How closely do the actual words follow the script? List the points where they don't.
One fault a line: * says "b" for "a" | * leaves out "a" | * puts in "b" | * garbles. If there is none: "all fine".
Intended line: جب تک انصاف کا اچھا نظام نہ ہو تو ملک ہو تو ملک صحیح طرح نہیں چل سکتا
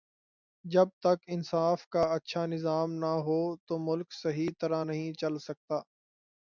* leaves out "ہو تو ملک"